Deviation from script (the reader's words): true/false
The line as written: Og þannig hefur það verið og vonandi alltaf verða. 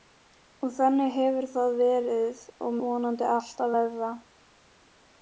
false